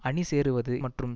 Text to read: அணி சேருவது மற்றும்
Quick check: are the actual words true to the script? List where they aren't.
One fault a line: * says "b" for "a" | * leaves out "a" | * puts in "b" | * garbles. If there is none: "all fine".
all fine